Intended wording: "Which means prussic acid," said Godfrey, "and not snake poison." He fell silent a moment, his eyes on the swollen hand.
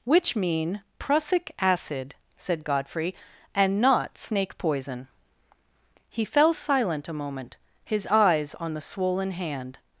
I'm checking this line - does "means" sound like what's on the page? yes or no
no